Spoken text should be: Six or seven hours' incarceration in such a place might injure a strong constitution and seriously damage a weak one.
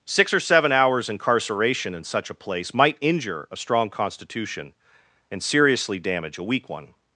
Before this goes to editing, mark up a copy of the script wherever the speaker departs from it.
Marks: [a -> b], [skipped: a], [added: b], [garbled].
Six or seven hours' incarceration in such a place might injure a strong constitution and seriously damage a weak one.